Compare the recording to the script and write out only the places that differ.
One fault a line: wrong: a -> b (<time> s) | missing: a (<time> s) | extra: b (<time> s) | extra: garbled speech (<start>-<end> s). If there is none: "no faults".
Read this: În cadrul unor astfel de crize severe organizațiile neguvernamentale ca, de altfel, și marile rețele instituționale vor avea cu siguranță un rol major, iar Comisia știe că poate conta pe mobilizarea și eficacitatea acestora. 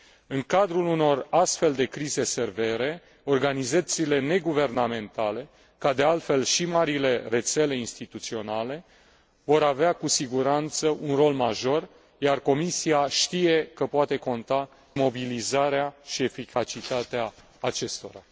missing: pe (14.7 s)